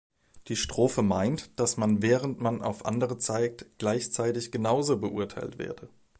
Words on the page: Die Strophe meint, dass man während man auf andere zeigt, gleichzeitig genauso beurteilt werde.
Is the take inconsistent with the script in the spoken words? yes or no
no